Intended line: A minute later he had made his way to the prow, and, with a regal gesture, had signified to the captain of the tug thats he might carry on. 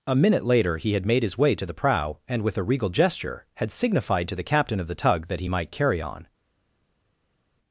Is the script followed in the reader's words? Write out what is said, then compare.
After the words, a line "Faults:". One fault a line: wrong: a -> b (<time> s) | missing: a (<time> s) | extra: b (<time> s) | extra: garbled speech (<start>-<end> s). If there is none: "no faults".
A minute later he had made his way to the prow, and, with a regal gesture, had signified to the captain of the tug that he might carry on.
Faults:
wrong: thats -> that (5.3 s)